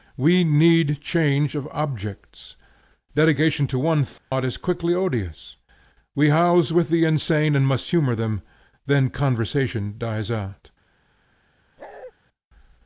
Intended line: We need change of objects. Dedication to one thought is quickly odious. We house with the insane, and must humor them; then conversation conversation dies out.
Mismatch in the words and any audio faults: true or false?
true